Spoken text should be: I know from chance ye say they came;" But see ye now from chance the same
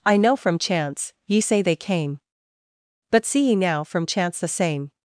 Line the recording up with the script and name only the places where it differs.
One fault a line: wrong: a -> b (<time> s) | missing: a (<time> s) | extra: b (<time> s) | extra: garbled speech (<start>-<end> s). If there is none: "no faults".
no faults